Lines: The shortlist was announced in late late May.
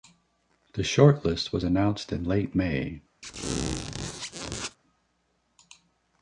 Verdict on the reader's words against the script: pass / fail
fail